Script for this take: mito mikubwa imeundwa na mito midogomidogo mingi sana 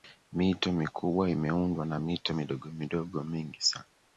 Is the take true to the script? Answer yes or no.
yes